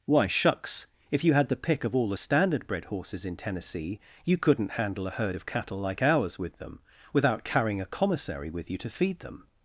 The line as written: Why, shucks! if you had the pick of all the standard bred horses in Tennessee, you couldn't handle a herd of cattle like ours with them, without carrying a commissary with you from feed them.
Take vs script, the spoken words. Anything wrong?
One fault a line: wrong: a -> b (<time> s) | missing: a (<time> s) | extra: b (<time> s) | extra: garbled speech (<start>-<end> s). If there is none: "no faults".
wrong: from -> to (8.8 s)